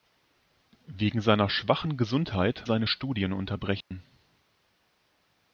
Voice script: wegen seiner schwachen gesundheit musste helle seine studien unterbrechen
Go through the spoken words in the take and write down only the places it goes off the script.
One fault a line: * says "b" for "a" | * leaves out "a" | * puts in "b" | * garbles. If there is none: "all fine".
* leaves out "musste helle"